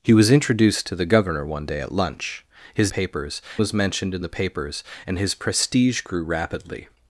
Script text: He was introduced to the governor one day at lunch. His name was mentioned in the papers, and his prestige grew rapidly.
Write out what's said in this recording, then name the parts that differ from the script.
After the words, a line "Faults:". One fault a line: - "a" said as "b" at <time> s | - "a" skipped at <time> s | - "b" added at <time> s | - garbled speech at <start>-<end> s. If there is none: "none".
He was introduced to the governor one day at lunch. His papers was mentioned in the papers, and his prestige grew rapidly.
Faults:
- "name" said as "papers" at 2.9 s